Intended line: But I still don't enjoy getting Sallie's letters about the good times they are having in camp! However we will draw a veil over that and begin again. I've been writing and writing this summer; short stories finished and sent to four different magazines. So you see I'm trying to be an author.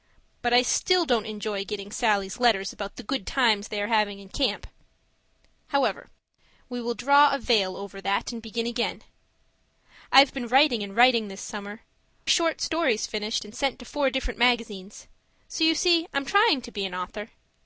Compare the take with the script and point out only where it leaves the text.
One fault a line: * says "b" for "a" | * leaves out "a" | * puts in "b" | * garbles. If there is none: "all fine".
all fine